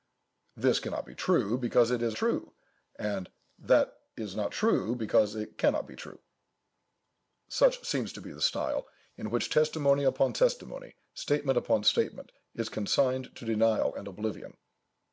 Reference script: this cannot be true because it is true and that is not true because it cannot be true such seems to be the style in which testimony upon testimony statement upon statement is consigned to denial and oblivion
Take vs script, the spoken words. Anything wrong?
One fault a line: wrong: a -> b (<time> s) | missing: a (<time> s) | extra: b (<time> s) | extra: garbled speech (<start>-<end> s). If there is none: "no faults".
no faults